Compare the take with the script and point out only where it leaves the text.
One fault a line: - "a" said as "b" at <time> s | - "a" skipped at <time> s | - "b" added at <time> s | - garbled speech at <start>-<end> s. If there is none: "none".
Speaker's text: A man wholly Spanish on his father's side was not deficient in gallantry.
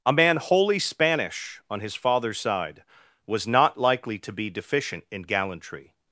- "likely to be" added at 3.8 s